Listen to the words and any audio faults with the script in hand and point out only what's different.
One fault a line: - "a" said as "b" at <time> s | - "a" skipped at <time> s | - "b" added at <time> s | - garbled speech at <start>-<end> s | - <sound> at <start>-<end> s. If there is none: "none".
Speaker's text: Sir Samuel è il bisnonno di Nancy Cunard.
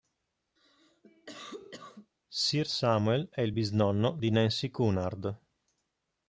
- cough at 0.6-2.1 s